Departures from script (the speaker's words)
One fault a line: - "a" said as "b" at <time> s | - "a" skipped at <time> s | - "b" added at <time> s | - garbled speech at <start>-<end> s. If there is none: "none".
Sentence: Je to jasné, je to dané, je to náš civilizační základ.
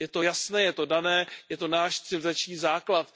none